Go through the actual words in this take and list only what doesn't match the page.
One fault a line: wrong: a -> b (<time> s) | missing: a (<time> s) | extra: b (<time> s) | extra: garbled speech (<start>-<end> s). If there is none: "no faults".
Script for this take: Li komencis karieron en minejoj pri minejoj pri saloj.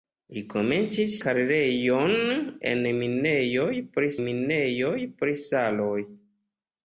no faults